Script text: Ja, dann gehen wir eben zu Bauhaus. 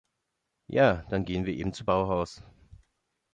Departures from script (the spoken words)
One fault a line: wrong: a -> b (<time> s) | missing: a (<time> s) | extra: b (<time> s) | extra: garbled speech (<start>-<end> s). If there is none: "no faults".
no faults